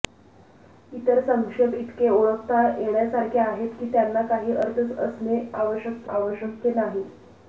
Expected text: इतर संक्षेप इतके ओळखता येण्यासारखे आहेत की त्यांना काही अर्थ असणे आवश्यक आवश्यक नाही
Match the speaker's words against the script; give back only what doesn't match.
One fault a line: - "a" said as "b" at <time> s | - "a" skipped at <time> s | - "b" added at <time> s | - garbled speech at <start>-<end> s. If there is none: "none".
none